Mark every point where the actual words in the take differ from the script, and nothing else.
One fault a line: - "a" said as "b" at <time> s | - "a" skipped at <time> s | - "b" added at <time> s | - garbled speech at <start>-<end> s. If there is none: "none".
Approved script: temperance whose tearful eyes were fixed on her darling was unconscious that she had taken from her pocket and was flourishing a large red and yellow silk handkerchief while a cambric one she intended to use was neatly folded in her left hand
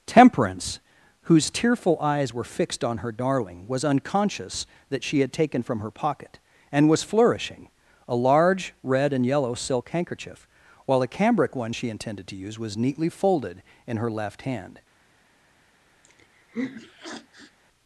none